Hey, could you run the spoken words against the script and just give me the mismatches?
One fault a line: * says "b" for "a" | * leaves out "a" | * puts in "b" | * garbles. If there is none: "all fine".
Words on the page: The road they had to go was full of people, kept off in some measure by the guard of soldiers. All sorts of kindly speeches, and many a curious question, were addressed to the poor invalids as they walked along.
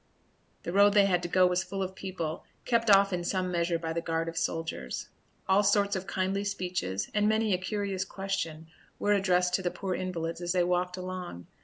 all fine